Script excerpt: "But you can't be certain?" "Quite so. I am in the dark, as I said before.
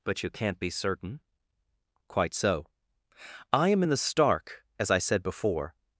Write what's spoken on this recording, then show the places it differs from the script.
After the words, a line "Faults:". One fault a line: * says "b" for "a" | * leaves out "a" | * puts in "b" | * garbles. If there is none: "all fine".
"But you can't be certain?" "Quite so. I am in the stark, as I said before.
Faults:
* says "stark" for "dark"